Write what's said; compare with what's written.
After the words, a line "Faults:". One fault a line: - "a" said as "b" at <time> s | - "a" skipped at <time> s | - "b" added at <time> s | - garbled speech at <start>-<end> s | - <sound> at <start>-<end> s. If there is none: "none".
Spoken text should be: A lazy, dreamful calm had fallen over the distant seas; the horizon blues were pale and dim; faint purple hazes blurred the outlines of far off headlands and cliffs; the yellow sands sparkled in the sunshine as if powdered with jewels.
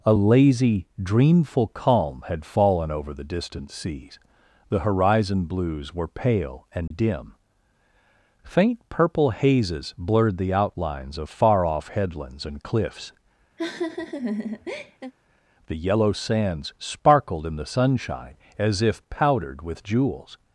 A lazy, dreamful calm had fallen over the distant seas; the horizon blues were pale and dim; faint purple hazes blurred the outlines of far off headlands and cliffs; the yellow sands sparkled in the sunshine as if powdered with jewels.
Faults:
- dropout at 6.9-6.9 s
- laugh at 13.6-15.1 s